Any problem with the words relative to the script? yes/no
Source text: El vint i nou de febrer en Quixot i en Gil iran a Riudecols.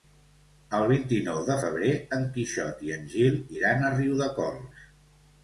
no